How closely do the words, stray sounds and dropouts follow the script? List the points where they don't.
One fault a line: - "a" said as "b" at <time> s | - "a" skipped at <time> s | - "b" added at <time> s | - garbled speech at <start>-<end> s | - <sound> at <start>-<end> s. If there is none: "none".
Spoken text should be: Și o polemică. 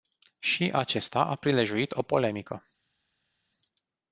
- "acesta a prilejuit" added at 0.7 s